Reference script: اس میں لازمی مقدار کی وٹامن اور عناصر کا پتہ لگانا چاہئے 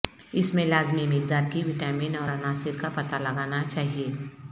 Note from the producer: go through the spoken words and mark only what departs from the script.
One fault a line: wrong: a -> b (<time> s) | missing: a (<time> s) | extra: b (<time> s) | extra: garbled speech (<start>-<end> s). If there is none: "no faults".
no faults